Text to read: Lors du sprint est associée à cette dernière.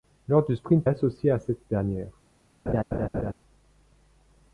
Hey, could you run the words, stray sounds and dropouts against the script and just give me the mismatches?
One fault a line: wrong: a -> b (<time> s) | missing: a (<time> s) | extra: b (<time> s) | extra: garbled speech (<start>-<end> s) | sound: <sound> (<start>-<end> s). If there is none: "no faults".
sound: laugh (2.7-3.3 s)